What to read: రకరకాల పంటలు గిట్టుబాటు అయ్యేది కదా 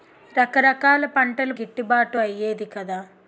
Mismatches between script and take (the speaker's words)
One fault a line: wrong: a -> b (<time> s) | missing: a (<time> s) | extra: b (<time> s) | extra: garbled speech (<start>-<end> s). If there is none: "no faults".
no faults